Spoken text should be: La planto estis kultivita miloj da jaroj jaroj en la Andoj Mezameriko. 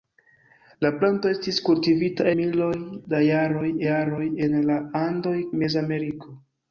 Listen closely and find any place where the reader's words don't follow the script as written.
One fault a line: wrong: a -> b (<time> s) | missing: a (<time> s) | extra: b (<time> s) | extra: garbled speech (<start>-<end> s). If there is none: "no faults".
no faults